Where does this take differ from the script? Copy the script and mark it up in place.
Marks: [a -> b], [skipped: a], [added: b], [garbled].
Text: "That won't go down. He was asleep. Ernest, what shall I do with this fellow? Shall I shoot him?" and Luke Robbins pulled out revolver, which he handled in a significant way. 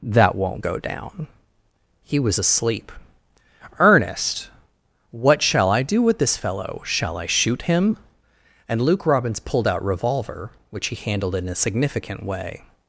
"That won't go down. He was asleep. Ernest, what shall I do with this fellow? Shall I shoot him?" and Luke Robbins pulled out revolver, which he handled in a significant way.